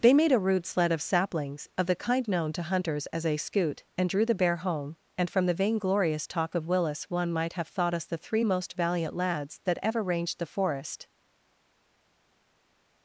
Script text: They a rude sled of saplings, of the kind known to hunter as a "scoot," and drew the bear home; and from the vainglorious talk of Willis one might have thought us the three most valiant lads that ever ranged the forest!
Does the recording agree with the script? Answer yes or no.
no